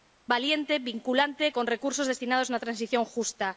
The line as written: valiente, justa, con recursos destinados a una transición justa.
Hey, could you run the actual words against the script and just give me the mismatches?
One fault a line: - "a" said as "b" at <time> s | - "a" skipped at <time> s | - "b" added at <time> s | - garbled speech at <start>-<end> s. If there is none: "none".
- "justa" said as "vinculante" at 0.9 s